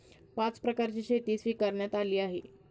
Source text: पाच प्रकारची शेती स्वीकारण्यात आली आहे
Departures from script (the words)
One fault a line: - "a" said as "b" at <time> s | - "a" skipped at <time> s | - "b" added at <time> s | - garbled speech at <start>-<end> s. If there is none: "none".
none